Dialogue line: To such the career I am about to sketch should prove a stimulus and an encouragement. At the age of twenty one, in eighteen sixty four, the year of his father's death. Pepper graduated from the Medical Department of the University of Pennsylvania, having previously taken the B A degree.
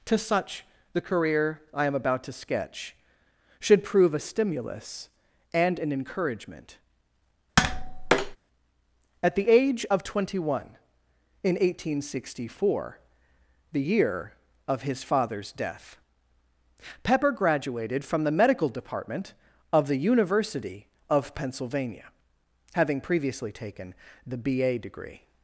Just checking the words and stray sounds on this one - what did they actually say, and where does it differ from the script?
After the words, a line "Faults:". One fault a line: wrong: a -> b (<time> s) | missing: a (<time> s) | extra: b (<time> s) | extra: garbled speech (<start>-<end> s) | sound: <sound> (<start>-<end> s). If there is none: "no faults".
To such the career I am about to sketch should prove a stimulus and an encouragement. At the age of twenty one, in eighteen sixty four, the year of his father's death. Pepper graduated from the Medical Department of the University of Pennsylvania, having previously taken the B A degree.
Faults:
sound: tap (7.6-8.4 s)